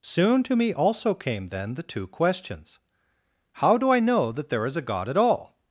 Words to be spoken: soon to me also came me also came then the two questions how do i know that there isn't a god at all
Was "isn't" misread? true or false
true